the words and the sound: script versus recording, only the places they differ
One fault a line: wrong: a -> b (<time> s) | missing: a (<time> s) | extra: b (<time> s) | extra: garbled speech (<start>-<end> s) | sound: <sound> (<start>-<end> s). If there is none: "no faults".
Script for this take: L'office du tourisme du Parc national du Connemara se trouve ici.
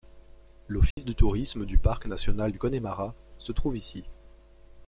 sound: dropout (0.9-1.0 s)